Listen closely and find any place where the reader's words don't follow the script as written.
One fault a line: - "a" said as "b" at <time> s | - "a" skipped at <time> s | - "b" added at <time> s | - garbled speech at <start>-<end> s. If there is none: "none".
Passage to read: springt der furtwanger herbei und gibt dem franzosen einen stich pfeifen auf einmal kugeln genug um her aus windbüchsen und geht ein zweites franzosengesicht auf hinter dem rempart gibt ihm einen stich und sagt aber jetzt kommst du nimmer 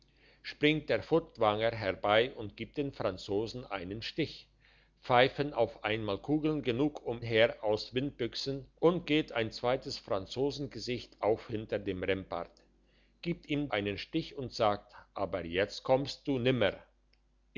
none